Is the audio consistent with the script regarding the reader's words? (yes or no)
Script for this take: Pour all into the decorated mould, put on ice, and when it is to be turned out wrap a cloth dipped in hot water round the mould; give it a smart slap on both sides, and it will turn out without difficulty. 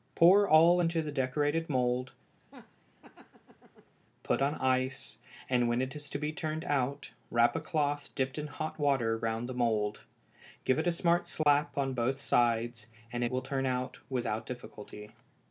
no